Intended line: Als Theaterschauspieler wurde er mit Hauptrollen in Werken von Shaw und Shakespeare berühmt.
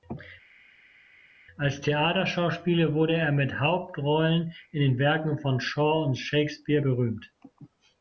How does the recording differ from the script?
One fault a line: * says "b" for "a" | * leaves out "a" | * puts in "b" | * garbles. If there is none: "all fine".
* puts in "den"